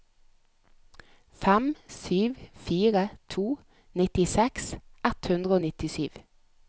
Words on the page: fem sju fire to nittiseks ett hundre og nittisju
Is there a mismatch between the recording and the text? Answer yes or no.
no